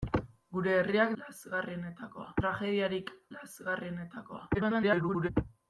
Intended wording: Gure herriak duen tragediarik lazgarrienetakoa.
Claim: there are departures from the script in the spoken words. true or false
true